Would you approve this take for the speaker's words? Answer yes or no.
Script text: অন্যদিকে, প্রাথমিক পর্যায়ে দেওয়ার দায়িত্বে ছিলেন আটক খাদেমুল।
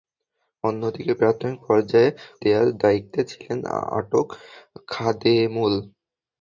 yes